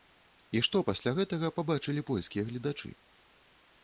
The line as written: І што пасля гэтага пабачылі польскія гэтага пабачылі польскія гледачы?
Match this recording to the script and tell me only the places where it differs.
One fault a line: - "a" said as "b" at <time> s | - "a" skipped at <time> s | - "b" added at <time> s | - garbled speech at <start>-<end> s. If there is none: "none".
- "гэтага пабачылі польскія" skipped at 2.4 s